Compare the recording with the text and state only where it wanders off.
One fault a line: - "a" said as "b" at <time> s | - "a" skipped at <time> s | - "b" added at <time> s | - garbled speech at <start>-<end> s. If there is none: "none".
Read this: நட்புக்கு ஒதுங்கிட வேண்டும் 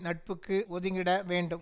none